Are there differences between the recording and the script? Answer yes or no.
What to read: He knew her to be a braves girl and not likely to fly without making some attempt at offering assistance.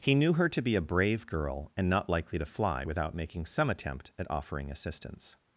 yes